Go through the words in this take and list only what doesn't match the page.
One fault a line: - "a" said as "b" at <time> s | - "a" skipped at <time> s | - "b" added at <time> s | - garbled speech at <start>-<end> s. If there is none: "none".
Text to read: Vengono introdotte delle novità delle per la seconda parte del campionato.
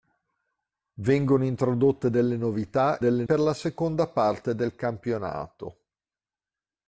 none